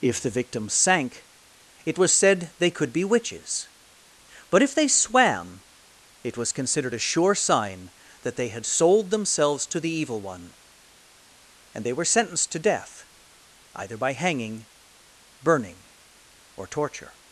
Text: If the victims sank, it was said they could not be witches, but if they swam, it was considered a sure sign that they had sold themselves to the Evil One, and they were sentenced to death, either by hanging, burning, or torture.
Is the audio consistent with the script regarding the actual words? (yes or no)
no